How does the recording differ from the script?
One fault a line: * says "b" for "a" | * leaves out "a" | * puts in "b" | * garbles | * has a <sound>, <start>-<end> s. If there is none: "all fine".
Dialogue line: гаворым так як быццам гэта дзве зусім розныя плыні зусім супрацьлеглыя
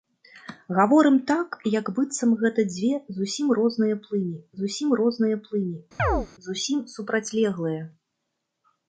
* puts in "розныя плыні зусім"
* has a chirp, 6.0-6.3 s